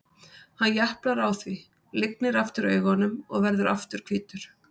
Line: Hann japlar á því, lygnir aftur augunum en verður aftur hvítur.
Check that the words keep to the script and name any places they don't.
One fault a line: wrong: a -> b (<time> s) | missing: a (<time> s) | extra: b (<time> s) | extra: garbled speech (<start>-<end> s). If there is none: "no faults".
wrong: en -> og (3.3 s)